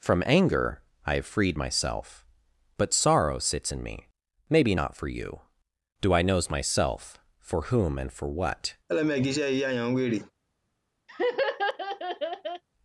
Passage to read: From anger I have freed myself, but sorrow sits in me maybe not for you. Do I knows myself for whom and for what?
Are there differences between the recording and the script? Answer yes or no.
no